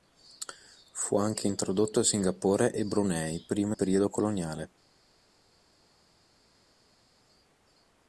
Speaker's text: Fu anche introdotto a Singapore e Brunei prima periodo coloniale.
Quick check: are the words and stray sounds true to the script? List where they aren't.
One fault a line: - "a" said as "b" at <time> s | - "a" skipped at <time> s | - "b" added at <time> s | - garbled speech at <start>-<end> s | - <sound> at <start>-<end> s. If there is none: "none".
none